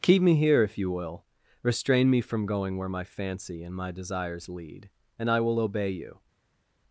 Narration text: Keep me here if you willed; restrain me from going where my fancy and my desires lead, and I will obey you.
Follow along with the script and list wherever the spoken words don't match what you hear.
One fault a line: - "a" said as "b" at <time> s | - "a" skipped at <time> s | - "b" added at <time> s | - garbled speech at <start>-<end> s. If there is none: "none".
- "willed" said as "will" at 0.9 s